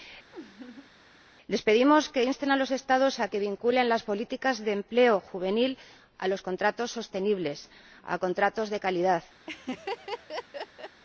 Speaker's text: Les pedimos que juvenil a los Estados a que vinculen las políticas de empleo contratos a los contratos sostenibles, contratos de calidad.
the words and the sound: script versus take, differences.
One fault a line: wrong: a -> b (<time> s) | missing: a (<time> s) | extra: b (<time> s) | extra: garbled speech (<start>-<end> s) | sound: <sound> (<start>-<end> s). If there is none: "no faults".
sound: laugh (0.3-0.9 s)
wrong: juvenil -> insten (2.2 s)
wrong: contratos -> juvenil (5.2 s)
extra: a (8.0 s)
sound: laugh (9.5-11.0 s)